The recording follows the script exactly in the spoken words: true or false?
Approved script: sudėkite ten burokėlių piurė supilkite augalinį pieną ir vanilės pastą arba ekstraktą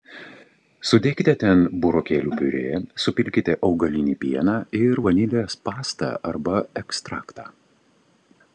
true